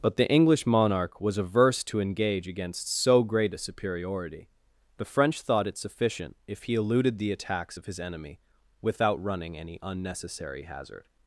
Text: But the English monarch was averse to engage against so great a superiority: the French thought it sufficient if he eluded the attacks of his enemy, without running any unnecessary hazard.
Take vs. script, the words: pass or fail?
pass